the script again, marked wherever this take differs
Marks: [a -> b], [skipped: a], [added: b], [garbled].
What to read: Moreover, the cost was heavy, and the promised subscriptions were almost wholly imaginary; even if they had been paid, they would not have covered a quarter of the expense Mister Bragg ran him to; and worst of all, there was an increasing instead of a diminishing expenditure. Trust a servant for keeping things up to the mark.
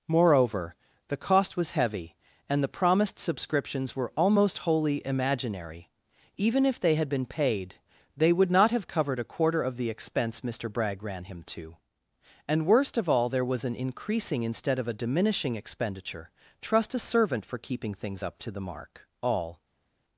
Moreover, the cost was heavy, and the promised subscriptions were almost wholly imaginary; even if they had been paid, they would not have covered a quarter of the expense Mister Bragg ran him to; and worst of all, there was an increasing instead of a diminishing expenditure. Trust a servant for keeping things up to the mark. [added: All]